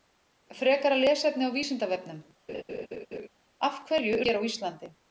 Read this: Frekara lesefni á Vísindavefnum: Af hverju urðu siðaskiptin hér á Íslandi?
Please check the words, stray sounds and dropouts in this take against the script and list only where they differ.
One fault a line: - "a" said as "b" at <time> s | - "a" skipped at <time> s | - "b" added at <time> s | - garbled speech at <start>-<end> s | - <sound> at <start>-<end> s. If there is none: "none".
- laugh at 2.5-3.3 s
- "urðu siðaskiptin" skipped at 4.2 s